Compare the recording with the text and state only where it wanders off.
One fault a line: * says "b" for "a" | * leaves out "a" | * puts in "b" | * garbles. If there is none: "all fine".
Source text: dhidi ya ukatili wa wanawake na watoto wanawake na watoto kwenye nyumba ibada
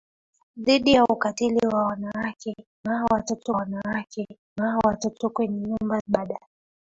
all fine